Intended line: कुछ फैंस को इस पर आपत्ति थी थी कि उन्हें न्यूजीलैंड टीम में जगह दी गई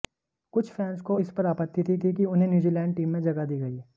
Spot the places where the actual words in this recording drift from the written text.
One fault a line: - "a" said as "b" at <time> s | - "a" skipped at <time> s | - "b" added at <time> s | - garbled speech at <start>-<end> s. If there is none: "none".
none